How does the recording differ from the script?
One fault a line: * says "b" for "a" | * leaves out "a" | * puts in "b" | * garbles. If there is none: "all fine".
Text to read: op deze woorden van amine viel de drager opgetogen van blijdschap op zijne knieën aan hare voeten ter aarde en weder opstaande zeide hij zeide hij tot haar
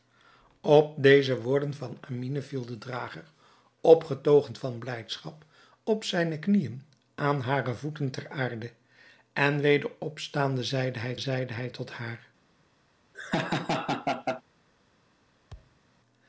all fine